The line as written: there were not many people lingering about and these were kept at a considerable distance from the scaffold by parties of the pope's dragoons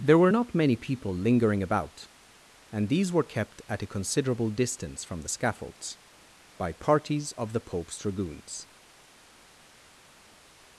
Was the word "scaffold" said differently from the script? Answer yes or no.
yes